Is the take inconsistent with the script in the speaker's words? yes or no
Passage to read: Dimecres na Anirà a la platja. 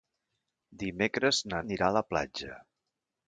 no